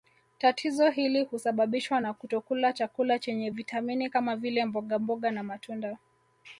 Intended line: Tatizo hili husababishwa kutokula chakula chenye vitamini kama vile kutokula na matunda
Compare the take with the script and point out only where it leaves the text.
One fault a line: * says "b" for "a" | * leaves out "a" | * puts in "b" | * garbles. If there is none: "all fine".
* puts in "na"
* says "mbogamboga" for "kutokula"